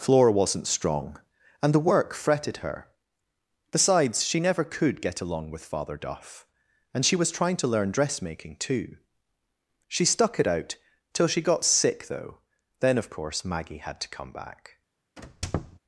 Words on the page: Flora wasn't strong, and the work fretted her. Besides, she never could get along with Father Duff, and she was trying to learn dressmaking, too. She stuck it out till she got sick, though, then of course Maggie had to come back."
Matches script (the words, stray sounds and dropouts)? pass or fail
fail